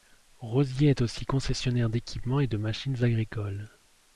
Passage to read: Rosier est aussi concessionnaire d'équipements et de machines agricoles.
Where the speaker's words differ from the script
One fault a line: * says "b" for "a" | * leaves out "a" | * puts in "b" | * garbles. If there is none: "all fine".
all fine